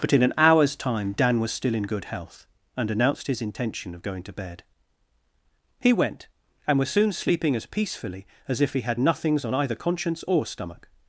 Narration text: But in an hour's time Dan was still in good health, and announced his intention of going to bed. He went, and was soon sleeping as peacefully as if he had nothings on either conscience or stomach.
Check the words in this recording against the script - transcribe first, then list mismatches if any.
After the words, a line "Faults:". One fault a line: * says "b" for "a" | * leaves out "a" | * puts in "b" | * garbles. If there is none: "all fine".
But in an hour's time Dan was still in good health, and announced his intention of going to bed. He went, and was soon sleeping as peacefully as if he had nothings on either conscience or stomach.
Faults:
all fine